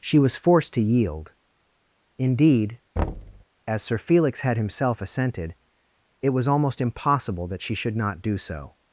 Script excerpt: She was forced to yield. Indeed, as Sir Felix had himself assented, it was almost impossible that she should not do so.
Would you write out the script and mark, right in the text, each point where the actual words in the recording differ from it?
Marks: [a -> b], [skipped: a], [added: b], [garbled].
She was forced to yield. Indeed, as Sir Felix had himself assented, it was almost impossible that she should not do so.